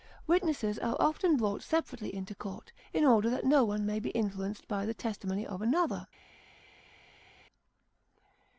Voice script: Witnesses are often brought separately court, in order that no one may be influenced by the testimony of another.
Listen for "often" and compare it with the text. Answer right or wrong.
right